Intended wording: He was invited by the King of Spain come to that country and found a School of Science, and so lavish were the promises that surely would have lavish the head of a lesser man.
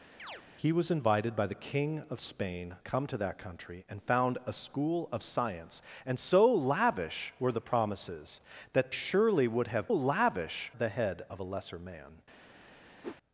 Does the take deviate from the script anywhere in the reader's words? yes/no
no